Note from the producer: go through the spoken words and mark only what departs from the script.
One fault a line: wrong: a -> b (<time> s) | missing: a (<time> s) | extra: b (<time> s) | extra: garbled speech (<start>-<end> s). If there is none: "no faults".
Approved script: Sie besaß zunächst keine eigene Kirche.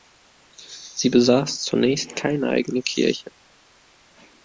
no faults